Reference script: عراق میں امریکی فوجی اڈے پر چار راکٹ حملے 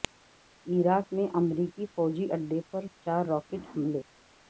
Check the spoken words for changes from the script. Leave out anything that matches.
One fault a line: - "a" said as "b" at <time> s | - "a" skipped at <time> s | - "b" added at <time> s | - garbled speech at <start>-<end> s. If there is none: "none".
none